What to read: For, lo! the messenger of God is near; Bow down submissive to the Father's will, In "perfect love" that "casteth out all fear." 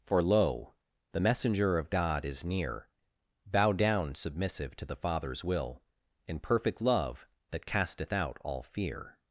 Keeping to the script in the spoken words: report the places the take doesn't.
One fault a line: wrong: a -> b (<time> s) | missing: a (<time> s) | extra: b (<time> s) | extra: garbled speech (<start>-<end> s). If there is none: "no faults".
no faults